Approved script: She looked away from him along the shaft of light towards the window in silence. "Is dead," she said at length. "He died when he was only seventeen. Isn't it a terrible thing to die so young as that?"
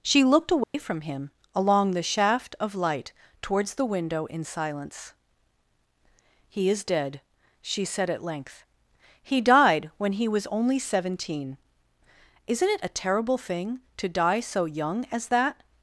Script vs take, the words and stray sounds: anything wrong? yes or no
yes